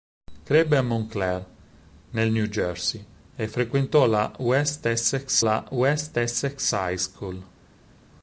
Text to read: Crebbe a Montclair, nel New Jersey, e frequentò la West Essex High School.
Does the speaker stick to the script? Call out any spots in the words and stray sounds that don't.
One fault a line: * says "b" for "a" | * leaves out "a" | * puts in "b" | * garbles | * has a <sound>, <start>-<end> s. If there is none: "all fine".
* puts in "la West Essex"